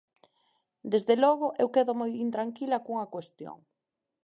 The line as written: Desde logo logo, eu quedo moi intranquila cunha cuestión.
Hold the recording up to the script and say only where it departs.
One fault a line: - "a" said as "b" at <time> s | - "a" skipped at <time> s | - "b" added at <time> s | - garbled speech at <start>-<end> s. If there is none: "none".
- "logo" skipped at 1.5 s